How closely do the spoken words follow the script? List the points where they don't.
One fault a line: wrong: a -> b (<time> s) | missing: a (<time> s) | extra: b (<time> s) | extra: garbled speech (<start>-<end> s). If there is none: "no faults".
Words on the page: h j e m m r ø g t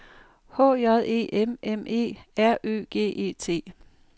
extra: e (1.9 s)
extra: e (3.1 s)